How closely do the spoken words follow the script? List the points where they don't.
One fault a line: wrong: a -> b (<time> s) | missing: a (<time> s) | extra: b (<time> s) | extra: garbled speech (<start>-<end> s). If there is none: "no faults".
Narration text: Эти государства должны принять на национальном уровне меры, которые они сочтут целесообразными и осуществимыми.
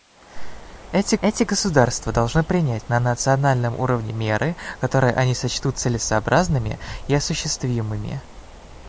extra: эти (1.2 s)